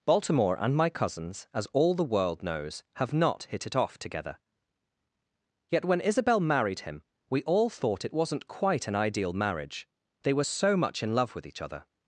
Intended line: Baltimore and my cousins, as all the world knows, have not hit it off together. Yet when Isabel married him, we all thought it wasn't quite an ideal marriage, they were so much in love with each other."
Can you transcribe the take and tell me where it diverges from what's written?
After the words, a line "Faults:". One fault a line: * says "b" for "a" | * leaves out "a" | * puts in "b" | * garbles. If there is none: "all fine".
Baltimore and my cousins, as all the world knows, have not hit it off together. Yet when Isabel married him, we all thought it wasn't quite an ideal marriage, they were so much in love with each other."
Faults:
all fine